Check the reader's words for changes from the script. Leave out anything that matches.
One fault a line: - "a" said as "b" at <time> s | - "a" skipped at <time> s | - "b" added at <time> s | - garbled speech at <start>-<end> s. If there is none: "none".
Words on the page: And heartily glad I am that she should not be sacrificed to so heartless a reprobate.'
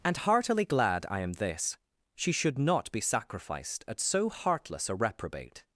- "that" said as "this" at 1.3 s
- "to" said as "at" at 3.9 s